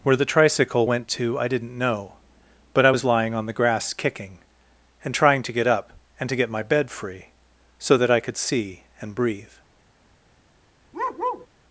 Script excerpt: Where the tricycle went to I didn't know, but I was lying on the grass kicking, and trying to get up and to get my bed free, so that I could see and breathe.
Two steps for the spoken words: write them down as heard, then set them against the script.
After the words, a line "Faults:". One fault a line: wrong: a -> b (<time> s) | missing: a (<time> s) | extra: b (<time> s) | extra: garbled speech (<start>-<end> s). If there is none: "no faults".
Where the tricycle went to I didn't know, but I was lying on the grass kicking, and trying to get up and to get my bed free, so that I could see and breathe.
Faults:
no faults